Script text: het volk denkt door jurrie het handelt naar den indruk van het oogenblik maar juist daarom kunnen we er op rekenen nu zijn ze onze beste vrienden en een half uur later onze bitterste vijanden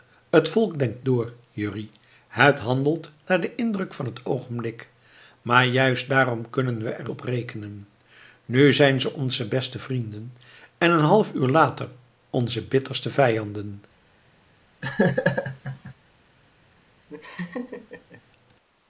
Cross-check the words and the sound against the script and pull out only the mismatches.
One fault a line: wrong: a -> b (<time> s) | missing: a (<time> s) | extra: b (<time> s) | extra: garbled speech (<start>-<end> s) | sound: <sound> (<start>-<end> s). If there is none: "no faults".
sound: laugh (14.8-15.9 s)
sound: laugh (17.1-18.2 s)